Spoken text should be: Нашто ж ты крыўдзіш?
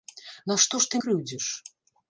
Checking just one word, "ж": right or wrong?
right